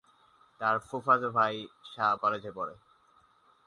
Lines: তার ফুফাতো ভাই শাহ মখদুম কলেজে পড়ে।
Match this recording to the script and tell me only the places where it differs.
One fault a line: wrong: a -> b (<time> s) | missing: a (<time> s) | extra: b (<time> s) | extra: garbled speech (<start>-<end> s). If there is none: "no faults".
missing: মখদুম (2.1 s)